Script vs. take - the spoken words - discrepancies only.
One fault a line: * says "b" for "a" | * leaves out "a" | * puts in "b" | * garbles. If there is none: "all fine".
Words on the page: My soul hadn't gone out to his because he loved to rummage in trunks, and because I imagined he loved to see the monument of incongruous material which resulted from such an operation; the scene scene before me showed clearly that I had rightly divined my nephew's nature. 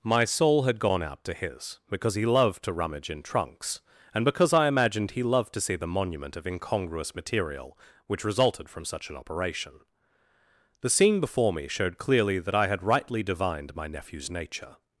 * says "had" for "hadn't"
* leaves out "scene"